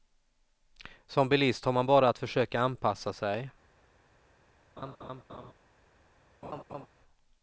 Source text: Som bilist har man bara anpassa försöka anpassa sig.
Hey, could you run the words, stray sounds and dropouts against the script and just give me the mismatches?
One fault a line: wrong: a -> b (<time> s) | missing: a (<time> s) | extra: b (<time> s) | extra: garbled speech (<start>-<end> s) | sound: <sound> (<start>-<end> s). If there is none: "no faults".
wrong: anpassa -> att (2.1 s)
sound: laugh (4.8-5.5 s)
sound: laugh (6.4-6.9 s)